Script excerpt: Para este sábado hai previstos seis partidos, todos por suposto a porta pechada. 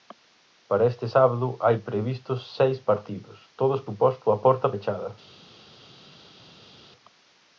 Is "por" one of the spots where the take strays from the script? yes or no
yes